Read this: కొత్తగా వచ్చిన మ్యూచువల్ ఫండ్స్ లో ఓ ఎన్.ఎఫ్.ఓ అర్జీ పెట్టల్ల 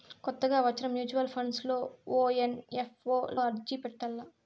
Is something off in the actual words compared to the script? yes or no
no